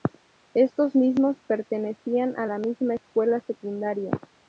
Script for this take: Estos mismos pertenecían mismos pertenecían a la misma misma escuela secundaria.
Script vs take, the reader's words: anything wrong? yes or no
yes